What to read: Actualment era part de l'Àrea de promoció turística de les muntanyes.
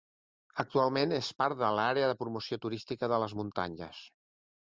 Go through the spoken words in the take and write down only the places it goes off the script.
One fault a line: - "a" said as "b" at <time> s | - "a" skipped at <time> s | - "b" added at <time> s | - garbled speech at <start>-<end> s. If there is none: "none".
- "era" said as "és" at 1.2 s